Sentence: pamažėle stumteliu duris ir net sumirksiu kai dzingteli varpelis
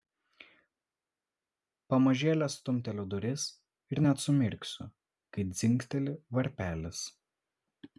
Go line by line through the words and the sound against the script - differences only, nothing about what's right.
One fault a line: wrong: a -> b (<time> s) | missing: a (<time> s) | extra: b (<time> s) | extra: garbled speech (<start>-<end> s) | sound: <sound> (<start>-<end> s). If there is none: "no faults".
no faults